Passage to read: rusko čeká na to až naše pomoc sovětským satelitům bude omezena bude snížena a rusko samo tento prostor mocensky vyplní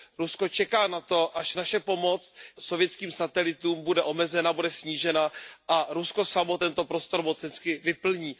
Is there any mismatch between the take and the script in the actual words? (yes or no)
no